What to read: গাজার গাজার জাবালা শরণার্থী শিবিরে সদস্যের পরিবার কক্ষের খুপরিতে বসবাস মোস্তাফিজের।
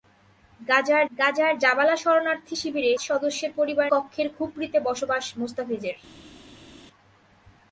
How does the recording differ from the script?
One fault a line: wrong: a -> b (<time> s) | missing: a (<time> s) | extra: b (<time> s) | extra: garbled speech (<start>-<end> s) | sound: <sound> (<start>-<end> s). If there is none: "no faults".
no faults